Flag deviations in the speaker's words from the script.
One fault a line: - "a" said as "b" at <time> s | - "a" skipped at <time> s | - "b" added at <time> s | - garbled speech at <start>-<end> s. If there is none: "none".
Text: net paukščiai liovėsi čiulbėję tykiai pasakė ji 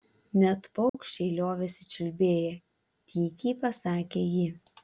none